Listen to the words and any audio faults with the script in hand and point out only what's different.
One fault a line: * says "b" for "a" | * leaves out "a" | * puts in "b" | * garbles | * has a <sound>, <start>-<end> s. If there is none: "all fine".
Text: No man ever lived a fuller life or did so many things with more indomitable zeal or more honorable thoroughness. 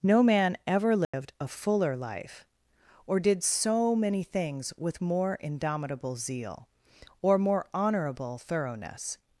* has a dropout, 1.0-1.1 s